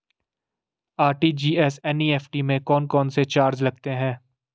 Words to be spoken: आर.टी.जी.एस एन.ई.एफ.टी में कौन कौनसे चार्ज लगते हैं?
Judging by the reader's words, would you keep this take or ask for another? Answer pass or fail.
pass